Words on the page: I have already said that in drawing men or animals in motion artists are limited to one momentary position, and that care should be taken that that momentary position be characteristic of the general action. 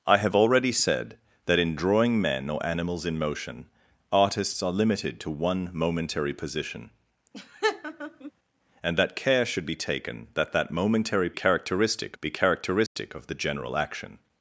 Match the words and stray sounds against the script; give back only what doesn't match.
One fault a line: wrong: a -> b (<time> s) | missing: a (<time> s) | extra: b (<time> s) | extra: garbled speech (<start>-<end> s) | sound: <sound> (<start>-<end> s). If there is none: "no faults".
sound: laugh (7.3-8.3 s)
wrong: position -> characteristic (11.3 s)
sound: dropout (12.9-13.0 s)